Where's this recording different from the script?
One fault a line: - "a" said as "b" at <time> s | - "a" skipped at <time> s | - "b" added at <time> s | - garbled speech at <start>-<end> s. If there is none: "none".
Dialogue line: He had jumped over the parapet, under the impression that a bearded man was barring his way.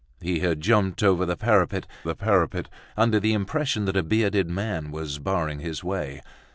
- "the parapet" added at 2.1 s